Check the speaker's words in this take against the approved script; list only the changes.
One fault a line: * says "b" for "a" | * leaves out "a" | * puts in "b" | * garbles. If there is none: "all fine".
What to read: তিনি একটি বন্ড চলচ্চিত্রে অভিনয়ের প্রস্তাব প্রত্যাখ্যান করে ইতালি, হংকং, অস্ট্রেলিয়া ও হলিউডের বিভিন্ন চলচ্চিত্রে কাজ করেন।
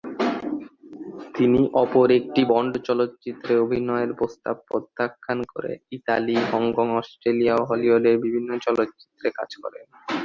* puts in "অপর"